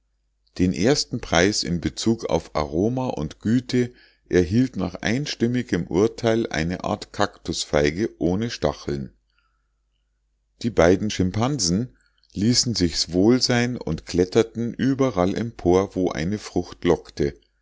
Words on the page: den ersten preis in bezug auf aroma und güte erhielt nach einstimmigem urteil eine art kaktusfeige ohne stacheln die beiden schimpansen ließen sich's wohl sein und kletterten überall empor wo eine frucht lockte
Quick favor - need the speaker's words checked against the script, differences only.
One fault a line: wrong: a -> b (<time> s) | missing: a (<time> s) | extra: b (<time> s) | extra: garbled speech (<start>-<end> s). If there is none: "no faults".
no faults